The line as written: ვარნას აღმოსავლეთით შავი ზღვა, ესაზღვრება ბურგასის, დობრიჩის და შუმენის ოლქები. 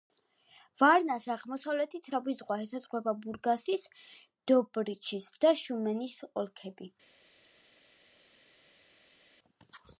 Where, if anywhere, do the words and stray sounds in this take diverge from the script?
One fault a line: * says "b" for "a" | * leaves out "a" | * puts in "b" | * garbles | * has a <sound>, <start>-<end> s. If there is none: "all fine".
all fine